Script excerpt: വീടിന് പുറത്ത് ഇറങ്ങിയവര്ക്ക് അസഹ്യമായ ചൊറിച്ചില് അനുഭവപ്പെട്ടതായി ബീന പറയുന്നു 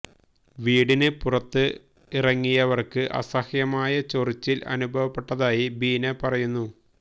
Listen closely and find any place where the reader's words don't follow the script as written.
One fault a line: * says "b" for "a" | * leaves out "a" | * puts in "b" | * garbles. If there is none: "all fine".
all fine